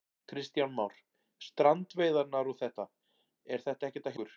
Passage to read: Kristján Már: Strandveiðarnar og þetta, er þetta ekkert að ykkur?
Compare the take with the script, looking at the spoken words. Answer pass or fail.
pass